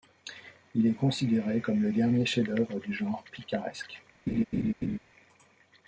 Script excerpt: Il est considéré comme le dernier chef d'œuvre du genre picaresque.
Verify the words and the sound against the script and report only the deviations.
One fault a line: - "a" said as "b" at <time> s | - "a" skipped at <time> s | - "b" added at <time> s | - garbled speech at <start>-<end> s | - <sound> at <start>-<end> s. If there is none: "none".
- laugh at 4.3-5.0 s